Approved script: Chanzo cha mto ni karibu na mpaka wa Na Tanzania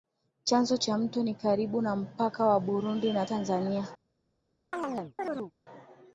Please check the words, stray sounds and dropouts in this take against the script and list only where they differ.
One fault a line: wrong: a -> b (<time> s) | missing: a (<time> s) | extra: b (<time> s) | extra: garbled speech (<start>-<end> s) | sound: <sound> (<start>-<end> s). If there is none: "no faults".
extra: Burundi (2.6 s)
sound: chirp (4.7-5.5 s)